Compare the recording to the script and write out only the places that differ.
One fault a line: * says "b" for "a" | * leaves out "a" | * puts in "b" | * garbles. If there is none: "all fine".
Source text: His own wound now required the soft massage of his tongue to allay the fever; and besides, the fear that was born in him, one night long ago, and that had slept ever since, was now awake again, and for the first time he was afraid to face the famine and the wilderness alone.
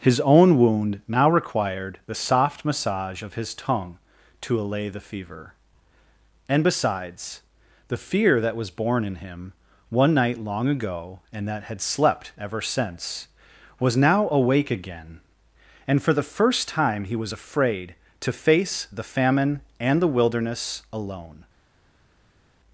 all fine